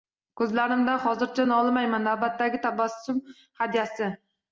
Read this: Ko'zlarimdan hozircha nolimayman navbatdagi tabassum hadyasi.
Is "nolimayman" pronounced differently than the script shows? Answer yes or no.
no